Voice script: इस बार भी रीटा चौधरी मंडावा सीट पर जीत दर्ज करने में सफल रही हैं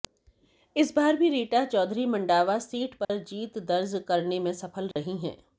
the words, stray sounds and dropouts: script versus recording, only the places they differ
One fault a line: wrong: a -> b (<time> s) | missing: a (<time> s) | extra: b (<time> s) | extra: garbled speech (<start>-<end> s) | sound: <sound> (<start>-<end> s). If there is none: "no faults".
sound: dropout (3.0-3.1 s)
sound: dropout (4.9-5.0 s)